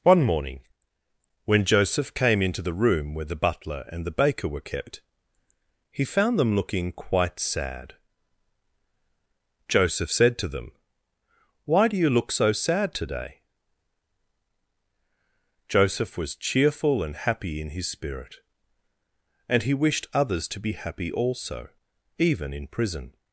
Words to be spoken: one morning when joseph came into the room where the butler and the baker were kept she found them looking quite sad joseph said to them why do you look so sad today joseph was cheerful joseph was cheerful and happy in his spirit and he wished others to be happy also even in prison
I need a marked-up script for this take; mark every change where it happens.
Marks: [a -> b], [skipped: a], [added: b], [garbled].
one morning when joseph came into the room where the butler and the baker were kept [she -> he] found them looking quite sad joseph said to them why do you look so sad today joseph was cheerful [skipped: joseph was cheerful] and happy in his spirit and he wished others to be happy also even in prison